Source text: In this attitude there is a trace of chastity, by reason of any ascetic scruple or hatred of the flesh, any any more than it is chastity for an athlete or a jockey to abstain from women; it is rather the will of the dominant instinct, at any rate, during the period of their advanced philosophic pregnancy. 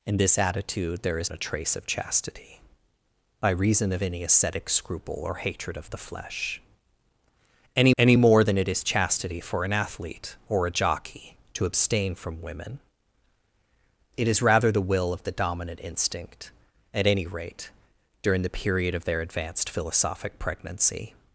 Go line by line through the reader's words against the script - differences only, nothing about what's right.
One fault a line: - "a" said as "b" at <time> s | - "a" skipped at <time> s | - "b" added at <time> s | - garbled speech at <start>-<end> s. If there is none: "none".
none